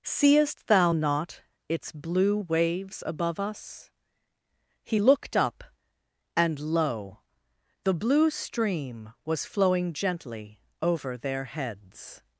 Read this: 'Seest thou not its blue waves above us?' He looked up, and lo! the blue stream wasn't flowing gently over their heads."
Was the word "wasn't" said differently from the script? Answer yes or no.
yes